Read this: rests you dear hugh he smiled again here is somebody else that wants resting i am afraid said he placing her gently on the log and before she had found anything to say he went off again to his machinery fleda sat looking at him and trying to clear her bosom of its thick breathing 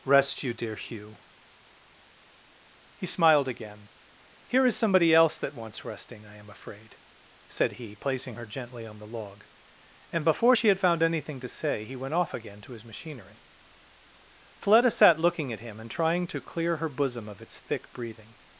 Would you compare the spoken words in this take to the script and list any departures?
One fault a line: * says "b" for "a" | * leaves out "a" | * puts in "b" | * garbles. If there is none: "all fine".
* says "rest" for "rests"